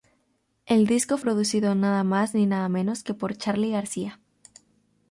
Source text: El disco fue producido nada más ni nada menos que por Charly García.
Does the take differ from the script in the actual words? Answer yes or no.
yes